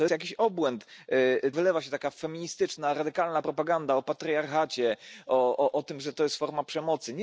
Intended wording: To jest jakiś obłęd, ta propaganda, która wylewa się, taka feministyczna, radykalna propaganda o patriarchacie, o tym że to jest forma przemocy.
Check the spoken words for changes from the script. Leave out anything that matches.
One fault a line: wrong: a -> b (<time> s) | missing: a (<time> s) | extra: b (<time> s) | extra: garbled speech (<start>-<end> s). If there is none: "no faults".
missing: jest (0.1 s)
missing: ta propaganda która (0.9 s)